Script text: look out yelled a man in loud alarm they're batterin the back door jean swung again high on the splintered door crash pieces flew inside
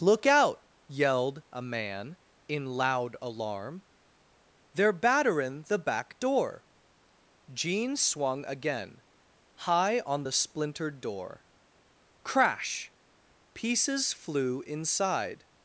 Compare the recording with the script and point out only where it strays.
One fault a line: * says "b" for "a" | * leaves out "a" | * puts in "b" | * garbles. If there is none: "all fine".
all fine